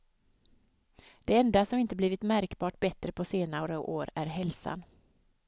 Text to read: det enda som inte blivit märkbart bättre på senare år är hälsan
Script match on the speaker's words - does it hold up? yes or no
yes